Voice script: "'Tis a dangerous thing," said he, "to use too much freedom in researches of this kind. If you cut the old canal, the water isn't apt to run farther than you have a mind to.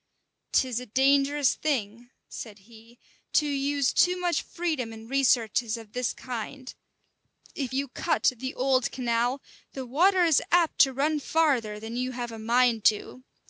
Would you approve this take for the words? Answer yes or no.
no